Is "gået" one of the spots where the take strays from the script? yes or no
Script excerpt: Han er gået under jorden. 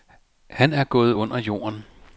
no